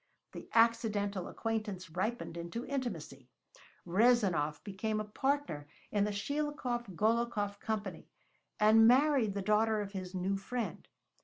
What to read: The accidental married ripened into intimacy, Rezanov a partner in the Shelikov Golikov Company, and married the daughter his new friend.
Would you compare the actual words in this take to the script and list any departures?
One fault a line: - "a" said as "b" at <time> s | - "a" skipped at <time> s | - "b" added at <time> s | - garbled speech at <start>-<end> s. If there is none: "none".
- "married" said as "acquaintance" at 1.3 s
- "became" added at 4.6 s
- "of" added at 9.8 s